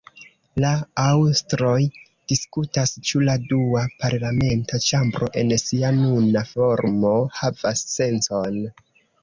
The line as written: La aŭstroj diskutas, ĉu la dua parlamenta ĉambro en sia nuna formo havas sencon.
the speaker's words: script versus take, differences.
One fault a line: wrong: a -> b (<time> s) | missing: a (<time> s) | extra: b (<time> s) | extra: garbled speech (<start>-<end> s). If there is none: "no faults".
no faults